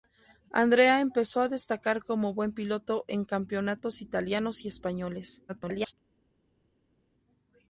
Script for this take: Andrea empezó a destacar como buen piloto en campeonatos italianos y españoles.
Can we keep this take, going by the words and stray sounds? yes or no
no